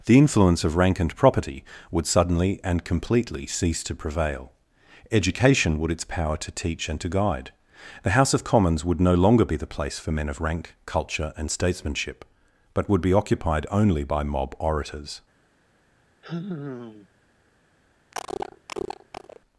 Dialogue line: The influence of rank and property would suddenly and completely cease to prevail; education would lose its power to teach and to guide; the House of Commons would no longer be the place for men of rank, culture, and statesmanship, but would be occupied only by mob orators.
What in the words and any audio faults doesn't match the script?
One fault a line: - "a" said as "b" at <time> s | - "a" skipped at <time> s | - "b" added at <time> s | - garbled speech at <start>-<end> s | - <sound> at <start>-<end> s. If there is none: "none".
- "lose" skipped at 5.9 s
- sigh at 16.2-17.1 s
- cough at 18.1-19.4 s